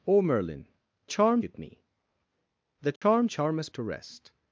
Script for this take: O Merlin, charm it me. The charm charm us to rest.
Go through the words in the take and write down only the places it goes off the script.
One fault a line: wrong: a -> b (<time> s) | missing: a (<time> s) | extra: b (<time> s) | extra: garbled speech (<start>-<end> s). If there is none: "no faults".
no faults